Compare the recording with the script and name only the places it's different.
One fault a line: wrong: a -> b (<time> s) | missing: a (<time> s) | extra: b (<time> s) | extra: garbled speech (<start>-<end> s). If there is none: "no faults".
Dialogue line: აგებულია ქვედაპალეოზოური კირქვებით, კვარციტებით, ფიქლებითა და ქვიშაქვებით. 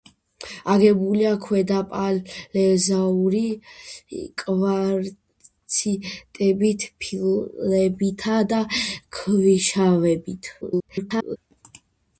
missing: კირქვებით (3.4 s)
extra: garbled speech (10.6-11.4 s)